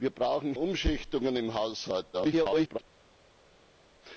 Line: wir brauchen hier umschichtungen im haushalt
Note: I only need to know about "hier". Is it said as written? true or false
false